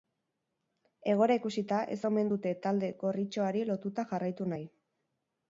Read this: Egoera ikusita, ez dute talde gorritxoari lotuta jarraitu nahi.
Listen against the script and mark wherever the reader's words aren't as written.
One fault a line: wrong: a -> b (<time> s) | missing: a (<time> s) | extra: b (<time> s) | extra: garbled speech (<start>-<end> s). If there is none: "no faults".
extra: omen (2.1 s)